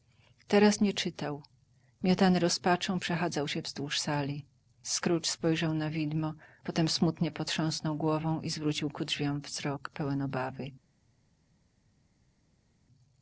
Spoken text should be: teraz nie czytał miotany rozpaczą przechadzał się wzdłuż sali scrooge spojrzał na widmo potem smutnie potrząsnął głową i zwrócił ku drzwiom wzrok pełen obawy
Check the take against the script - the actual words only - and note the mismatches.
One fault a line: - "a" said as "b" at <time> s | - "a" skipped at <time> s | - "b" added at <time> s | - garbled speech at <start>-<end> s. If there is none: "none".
none